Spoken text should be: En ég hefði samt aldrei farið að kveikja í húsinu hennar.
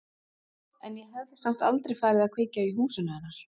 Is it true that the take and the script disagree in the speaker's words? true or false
false